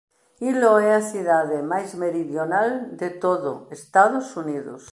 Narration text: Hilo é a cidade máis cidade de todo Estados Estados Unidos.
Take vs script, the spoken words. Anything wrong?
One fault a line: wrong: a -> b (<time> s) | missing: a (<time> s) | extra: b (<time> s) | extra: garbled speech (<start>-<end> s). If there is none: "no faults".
wrong: cidade -> meridional (2.0 s)
missing: Estados (4.3 s)